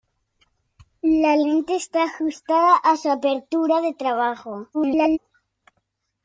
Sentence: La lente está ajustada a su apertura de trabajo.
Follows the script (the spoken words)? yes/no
no